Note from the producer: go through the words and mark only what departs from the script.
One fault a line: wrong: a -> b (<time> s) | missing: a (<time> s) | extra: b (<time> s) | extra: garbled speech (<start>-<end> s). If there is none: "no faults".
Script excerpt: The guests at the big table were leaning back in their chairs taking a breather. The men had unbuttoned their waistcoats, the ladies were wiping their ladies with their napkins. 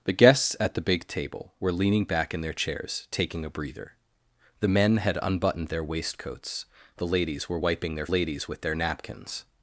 no faults